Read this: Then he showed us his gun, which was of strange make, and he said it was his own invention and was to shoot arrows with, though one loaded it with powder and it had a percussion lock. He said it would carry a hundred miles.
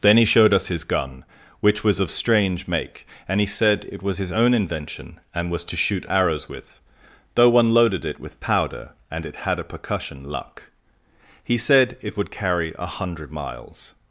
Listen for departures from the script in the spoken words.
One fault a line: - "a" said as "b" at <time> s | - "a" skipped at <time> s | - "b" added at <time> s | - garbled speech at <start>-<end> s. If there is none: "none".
- "lock" said as "luck" at 10.2 s